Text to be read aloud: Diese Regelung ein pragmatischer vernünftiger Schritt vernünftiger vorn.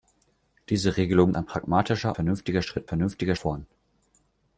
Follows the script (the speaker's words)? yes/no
yes